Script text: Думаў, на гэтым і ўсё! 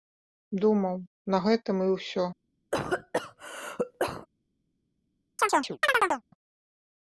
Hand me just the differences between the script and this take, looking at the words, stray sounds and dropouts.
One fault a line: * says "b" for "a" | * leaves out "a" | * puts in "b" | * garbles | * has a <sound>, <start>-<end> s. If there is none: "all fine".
* has a cough, 2.7-4.3 s
* has a chirp, 5.4-6.2 s